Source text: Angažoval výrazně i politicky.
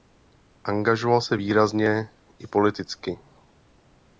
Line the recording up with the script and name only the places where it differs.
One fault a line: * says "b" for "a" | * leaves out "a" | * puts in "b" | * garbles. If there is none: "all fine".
* puts in "se"